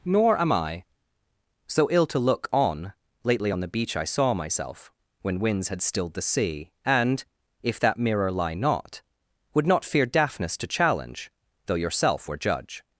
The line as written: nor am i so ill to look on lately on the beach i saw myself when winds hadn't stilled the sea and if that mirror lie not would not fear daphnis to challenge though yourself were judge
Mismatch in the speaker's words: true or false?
true